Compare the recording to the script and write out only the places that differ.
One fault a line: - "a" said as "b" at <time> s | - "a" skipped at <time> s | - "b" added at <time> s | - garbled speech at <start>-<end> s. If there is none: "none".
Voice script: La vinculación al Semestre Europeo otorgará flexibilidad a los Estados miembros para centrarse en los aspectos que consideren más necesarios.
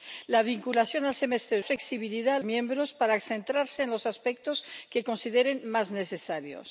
- "Europeo otorgará" skipped at 1.6 s
- "los Estados" skipped at 2.4 s